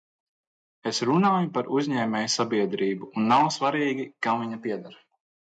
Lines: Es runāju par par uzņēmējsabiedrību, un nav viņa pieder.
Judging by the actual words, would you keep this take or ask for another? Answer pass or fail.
fail